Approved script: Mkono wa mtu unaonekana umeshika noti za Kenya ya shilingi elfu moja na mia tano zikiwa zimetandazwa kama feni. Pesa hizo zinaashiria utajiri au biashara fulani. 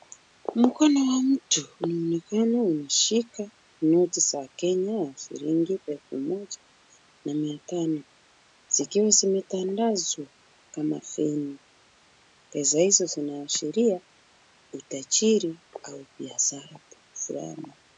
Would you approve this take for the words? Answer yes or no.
yes